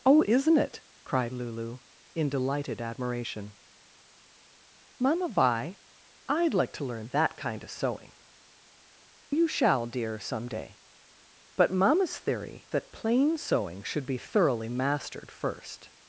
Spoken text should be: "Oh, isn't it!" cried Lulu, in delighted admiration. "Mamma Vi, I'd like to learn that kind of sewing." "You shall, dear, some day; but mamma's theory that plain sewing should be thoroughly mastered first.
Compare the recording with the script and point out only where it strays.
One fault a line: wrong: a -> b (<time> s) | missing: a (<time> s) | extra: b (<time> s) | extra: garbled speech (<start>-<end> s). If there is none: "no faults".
no faults